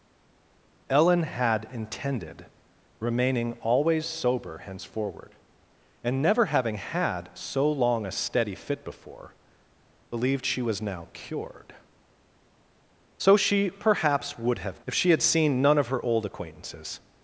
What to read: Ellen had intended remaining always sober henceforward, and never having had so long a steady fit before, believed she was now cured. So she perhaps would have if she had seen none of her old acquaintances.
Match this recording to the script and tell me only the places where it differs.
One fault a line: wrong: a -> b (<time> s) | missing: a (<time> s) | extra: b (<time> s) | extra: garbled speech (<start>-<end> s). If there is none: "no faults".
no faults